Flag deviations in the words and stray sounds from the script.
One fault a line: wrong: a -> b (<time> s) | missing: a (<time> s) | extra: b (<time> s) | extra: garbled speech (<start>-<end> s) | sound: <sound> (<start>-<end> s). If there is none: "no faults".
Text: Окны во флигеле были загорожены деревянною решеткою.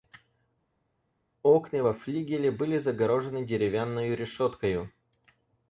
no faults